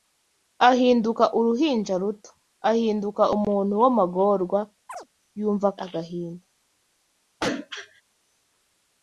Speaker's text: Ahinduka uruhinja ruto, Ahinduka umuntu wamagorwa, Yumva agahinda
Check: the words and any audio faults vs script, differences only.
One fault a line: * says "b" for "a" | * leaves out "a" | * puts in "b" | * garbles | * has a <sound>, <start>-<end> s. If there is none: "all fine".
* has a chirp, 4.9-5.1 s
* has a throat clearing, 7.4-8.0 s